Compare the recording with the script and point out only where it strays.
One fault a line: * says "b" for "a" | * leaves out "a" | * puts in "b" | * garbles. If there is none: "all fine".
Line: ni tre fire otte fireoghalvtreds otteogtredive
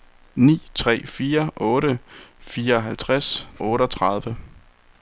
all fine